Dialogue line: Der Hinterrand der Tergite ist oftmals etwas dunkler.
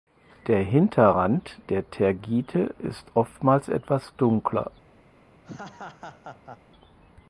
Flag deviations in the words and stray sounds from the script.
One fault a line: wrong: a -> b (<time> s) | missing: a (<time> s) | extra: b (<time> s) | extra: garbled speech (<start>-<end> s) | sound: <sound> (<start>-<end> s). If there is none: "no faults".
sound: laugh (5.4-6.6 s)